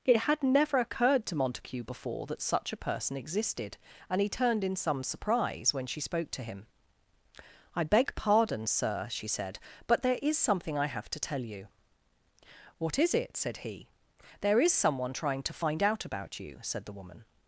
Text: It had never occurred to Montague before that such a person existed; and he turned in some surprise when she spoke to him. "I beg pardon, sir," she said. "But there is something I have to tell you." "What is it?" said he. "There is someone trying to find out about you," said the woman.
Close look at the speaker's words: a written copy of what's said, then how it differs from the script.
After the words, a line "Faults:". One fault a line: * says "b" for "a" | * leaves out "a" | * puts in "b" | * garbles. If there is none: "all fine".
It had never occurred to Montague before that such a person existed; and he turned in some surprise when she spoke to him. "I beg pardon, sir," she said. "But there is something I have to tell you." "What is it?" said he. "There is someone trying to find out about you," said the woman.
Faults:
all fine